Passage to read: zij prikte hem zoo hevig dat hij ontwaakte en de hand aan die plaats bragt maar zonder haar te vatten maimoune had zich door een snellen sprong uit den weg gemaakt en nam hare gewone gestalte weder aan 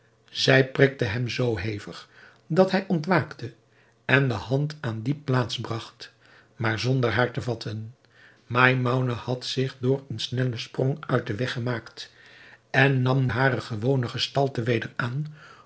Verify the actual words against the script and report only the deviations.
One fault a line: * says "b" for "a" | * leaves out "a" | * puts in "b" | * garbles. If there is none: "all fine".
all fine